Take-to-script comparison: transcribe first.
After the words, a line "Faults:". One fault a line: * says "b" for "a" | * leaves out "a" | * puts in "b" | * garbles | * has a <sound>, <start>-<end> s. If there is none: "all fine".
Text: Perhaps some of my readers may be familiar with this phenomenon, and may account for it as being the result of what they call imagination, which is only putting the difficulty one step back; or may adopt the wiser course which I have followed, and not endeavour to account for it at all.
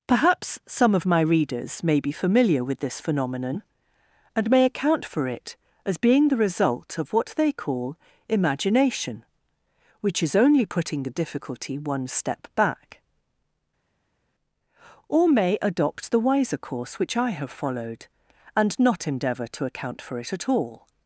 Perhaps some of my readers may be familiar with this phenomenon, and may account for it as being the result of what they call imagination, which is only putting the difficulty one step back; or may adopt the wiser course which I have followed, and not endeavour to account for it at all.
Faults:
all fine